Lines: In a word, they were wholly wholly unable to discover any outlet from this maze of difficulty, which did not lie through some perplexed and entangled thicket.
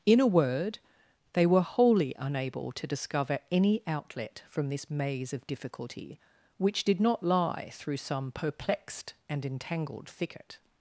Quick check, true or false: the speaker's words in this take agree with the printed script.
false